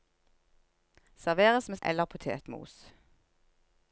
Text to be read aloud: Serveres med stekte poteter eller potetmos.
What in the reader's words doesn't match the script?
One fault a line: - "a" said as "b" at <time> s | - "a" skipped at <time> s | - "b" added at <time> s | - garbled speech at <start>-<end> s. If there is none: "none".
- "stekte poteter" skipped at 1.8 s